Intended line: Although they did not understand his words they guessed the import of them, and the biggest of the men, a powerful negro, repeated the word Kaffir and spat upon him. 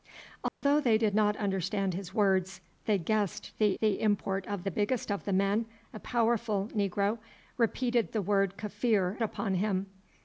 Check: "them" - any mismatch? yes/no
yes